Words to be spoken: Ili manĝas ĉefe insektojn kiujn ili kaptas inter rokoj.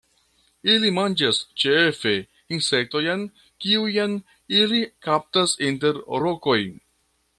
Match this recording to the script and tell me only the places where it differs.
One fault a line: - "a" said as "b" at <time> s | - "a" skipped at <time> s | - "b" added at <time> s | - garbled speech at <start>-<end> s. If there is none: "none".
none